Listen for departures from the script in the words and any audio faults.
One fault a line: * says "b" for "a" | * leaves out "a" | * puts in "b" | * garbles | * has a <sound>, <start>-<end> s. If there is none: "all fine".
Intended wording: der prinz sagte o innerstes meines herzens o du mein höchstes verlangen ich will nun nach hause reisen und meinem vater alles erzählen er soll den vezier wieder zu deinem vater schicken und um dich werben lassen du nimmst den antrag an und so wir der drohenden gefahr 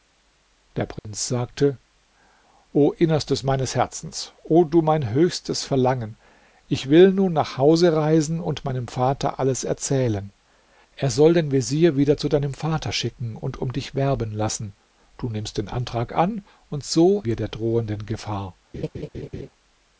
* has a dropout, 1.0-1.0 s
* has a laugh, 18.7-19.5 s